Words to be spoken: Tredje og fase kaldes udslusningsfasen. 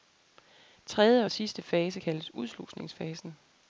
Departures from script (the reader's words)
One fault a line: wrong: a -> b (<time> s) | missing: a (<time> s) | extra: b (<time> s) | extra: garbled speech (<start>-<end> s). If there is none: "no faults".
extra: sidste (1.3 s)